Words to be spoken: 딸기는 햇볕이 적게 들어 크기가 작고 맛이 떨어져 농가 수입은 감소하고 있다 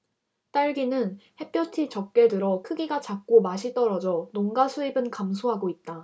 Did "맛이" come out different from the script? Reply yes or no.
no